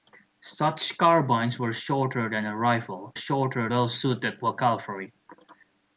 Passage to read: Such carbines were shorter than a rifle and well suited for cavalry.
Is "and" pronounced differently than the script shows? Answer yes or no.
yes